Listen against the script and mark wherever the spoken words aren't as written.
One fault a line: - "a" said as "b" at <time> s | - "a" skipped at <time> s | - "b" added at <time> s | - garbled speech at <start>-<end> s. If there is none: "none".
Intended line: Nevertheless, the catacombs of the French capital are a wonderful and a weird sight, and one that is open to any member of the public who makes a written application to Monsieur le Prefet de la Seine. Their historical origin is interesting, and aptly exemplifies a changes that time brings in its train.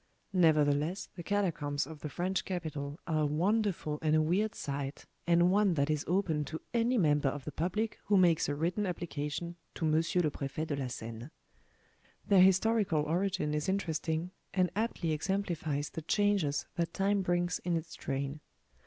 - "a" said as "the" at 15.9 s